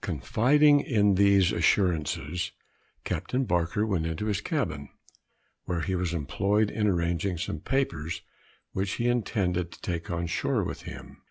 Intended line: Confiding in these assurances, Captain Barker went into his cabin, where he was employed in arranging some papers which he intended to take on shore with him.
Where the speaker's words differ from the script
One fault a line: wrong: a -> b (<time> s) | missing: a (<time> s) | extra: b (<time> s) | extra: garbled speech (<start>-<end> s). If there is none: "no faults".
no faults